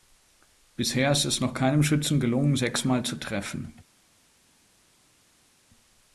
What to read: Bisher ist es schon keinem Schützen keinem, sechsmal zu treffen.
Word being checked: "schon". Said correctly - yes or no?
no